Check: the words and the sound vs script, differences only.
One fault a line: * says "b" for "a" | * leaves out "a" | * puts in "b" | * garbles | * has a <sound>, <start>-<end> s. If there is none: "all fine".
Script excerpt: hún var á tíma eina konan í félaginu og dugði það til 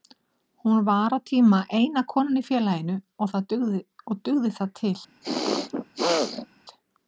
* has a throat clearing, 5.2-6.5 s